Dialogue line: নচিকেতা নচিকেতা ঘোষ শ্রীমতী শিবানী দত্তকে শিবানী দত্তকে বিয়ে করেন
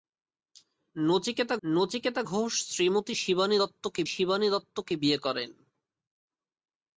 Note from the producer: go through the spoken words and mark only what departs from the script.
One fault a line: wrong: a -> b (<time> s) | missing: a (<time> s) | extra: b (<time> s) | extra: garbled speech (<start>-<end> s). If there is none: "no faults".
no faults